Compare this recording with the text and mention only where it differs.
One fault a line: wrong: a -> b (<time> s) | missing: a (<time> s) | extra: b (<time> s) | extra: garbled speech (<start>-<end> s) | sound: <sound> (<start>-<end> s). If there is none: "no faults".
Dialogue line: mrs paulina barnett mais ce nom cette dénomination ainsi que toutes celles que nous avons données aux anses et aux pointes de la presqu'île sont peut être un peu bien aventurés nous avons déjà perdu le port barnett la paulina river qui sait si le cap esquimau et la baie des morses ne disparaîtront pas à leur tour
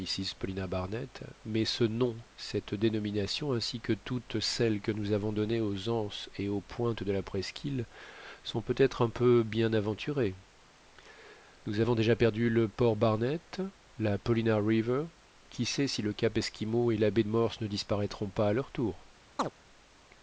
missing: des (17.2 s)
sound: chirp (19.4-19.5 s)